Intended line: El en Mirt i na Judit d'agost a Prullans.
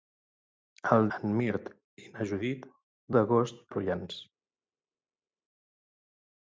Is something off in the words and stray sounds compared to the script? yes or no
no